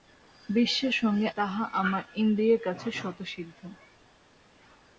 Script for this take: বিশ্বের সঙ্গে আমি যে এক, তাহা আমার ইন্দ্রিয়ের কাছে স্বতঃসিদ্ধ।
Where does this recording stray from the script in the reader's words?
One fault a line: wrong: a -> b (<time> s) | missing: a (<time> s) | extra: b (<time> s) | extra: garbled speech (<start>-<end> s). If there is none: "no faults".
missing: আমি যে এক (1.3 s)